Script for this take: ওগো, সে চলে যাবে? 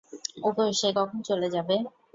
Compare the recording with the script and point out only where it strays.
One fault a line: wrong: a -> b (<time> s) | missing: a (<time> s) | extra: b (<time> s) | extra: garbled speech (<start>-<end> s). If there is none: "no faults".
extra: কখন (1.0 s)